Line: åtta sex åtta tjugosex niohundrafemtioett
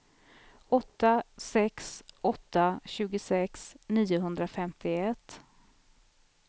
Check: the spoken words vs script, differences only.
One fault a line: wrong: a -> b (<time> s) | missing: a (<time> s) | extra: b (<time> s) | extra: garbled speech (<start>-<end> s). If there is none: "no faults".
no faults